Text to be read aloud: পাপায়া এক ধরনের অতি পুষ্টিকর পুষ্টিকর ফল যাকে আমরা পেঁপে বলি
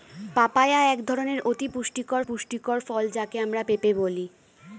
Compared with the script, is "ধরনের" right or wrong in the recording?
right